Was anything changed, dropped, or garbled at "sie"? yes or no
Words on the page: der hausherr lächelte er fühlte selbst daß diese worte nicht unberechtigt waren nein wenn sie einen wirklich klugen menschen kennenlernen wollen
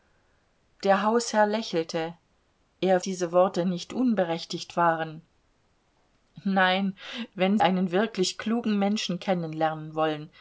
yes